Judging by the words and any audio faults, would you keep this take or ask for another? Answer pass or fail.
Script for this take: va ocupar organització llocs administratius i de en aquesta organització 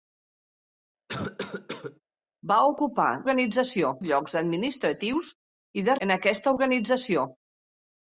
fail